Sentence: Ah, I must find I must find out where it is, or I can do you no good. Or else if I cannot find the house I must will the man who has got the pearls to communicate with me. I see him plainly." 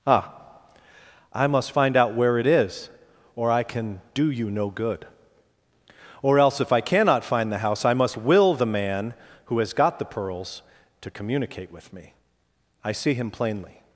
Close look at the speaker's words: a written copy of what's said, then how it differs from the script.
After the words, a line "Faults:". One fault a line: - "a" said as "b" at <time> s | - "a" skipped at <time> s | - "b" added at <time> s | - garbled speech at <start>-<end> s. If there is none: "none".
Ah, I must find out where it is, or I can do you no good. Or else if I cannot find the house I must will the man who has got the pearls to communicate with me. I see him plainly."
Faults:
- "I must find" skipped at 1.9 s